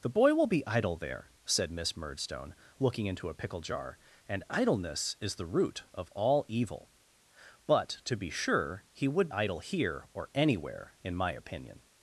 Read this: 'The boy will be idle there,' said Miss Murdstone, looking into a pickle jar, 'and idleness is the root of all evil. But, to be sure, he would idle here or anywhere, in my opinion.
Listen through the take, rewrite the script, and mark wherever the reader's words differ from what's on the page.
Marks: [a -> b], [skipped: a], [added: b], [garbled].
'The boy will be idle there,' said Miss Murdstone, looking into a pickle jar, 'and idleness is the root of all evil. But, to be sure, he would idle here or anywhere, in my opinion.